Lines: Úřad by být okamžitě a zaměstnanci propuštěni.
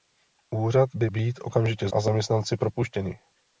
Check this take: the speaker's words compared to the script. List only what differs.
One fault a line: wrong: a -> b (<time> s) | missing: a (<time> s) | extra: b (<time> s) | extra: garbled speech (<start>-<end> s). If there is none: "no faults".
no faults